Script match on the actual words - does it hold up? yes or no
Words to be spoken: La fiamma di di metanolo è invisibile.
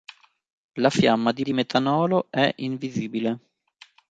yes